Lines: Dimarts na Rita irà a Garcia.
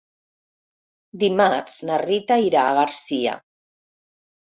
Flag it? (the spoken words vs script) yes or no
no